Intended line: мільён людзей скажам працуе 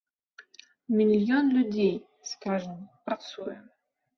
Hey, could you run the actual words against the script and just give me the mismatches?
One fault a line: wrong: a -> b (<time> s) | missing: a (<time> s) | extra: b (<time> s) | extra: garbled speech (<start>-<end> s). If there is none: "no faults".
no faults